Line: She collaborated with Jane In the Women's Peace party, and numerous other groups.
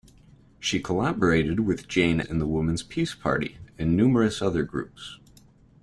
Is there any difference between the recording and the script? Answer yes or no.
no